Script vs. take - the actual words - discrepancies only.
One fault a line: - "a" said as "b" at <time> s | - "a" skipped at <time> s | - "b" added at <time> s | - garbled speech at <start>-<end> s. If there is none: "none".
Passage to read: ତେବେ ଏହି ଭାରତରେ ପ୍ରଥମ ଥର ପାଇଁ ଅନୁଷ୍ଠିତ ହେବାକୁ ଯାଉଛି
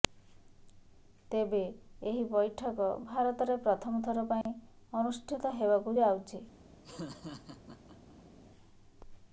- "ବୈଠକ" added at 2.3 s